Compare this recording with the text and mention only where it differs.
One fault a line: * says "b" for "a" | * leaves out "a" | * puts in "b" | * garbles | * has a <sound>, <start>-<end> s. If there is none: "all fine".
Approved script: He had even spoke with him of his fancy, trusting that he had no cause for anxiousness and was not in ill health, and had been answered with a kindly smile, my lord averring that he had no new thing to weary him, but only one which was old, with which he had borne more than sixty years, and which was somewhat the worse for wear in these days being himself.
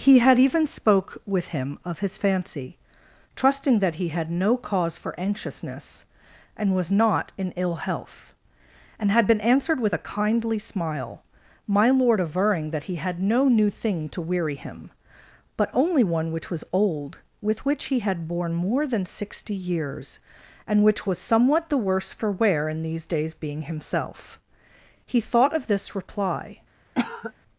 * puts in "He thought of this reply"
* has a cough, 27.0-27.3 s